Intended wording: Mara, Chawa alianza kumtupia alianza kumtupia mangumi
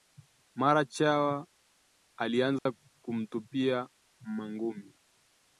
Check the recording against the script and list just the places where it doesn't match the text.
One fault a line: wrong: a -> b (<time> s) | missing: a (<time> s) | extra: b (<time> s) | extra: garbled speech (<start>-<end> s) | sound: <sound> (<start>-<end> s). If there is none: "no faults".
sound: dropout (2.6-2.7 s)
missing: alianza kumtupia (3.9 s)